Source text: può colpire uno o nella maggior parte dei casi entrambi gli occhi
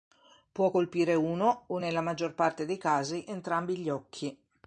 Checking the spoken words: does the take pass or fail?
pass